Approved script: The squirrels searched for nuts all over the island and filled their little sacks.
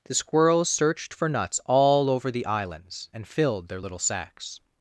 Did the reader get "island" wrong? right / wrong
wrong